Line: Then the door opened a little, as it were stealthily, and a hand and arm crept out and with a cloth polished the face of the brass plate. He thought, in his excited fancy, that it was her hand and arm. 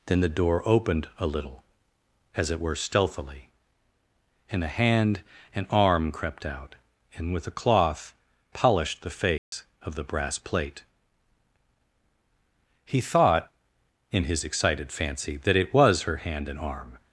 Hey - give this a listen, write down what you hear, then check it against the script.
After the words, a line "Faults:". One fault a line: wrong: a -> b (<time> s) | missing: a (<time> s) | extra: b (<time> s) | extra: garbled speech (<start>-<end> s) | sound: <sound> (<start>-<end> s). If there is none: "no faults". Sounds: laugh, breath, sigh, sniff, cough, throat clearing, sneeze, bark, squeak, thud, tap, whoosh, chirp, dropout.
Then the door opened a little, as it were stealthily, and a hand and arm crept out and with a cloth polished the face of the brass plate. He thought, in his excited fancy, that it was her hand and arm.
Faults:
sound: dropout (9.4-9.5 s)